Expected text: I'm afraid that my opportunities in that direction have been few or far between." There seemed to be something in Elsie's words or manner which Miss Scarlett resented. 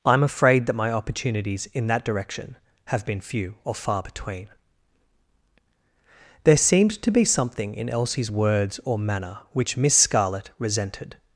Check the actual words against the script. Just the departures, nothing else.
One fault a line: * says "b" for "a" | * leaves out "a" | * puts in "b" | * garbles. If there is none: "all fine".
all fine